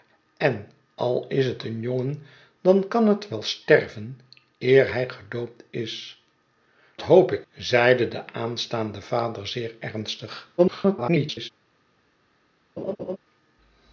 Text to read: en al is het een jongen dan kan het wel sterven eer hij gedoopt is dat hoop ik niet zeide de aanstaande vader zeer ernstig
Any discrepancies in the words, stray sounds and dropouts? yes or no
yes